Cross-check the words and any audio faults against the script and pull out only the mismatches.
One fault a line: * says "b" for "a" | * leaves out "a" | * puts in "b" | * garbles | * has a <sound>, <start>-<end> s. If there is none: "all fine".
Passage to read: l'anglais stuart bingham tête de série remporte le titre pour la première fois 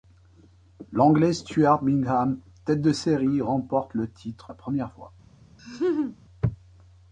* leaves out "pour"
* has a laugh, 5.6-6.2 s